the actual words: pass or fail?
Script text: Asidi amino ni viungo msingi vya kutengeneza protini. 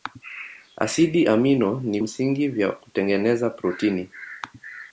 fail